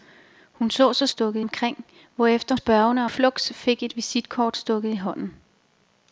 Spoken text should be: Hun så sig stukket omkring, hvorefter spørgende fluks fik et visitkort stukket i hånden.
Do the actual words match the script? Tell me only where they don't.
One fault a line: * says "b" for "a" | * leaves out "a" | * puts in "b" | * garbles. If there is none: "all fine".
all fine